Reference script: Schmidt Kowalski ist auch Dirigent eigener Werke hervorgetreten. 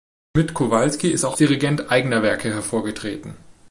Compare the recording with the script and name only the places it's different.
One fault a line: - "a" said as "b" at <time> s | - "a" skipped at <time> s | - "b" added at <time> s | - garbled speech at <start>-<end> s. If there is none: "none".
none